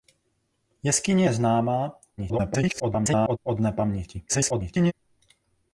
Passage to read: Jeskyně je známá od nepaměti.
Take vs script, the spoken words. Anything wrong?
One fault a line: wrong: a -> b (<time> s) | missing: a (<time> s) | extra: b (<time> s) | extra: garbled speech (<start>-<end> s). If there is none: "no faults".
extra: garbled speech (2.2-3.4 s)
extra: garbled speech (4.3-4.9 s)